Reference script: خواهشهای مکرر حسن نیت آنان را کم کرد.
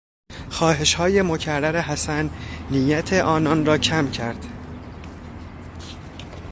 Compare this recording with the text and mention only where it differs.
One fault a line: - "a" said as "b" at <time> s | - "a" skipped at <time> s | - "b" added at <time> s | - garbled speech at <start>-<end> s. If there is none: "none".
none